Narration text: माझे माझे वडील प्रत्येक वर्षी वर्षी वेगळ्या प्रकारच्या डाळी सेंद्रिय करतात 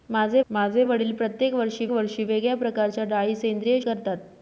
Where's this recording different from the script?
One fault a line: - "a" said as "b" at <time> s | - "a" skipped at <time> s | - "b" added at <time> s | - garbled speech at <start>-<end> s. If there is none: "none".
none